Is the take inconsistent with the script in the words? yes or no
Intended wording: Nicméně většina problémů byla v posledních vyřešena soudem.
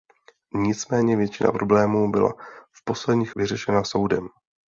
no